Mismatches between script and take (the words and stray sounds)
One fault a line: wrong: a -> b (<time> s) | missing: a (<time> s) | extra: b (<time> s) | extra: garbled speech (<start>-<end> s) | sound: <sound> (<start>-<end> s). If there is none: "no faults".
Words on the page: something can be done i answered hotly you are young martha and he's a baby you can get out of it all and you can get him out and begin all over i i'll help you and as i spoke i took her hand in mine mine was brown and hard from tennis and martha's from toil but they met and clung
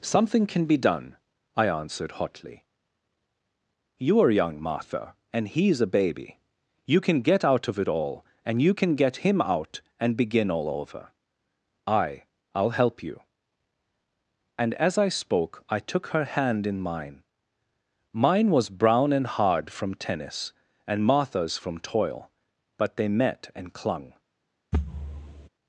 sound: thud (24.7-25.5 s)